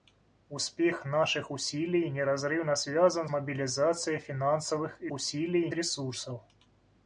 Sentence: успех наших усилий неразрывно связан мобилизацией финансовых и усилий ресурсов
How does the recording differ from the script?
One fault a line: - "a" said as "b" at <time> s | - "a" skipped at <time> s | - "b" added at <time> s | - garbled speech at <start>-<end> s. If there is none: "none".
none